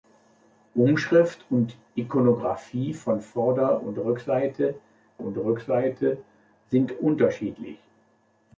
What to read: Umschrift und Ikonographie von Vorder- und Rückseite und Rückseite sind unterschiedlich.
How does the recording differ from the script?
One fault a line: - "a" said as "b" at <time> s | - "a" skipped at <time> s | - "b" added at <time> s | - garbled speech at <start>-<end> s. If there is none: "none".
none